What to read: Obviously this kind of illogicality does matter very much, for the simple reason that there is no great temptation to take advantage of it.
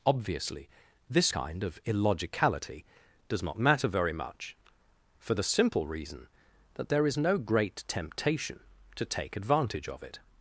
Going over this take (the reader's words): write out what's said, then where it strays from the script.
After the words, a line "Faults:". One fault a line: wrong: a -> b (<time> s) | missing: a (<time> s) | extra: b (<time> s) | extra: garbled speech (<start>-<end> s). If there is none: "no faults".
Obviously this kind of illogicality does not matter very much, for the simple reason that there is no great temptation to take advantage of it.
Faults:
extra: not (3.4 s)